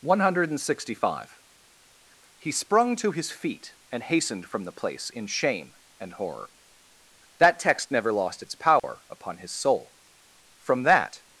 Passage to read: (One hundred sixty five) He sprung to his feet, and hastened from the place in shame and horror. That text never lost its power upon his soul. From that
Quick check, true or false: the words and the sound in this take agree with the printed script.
false